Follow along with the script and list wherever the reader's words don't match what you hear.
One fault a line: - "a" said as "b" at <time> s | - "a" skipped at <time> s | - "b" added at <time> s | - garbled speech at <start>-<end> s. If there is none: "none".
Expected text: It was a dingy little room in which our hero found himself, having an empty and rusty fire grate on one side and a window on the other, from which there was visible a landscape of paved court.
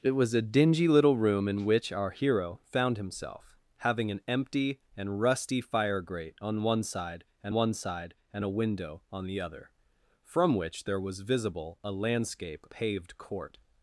- "one side and" added at 7.5 s
- "of" skipped at 12.7 s